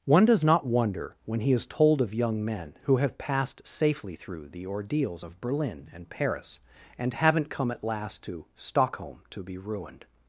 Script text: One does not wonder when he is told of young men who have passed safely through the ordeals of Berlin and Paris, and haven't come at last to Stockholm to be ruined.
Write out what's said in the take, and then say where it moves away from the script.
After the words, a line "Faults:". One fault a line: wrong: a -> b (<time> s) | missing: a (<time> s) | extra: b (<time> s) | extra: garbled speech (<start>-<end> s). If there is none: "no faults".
One does not wonder when he is told of young men who have passed safely through the ordeals of Berlin and Paris, and haven't come at last to Stockholm to be ruined.
Faults:
no faults